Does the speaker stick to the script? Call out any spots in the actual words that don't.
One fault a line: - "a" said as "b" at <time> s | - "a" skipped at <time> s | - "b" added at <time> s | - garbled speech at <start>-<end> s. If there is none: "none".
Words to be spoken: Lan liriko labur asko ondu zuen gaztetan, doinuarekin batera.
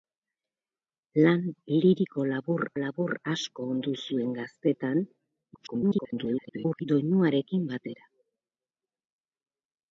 - "labur" added at 2.8 s
- garbled speech at 5.5-6.9 s